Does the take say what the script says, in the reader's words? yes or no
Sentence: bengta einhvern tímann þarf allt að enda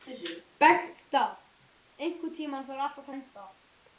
yes